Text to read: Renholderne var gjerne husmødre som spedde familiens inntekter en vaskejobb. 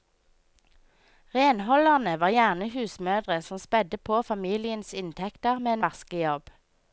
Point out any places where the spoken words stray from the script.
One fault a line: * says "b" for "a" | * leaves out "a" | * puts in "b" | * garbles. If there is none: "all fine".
* puts in "på"
* puts in "med"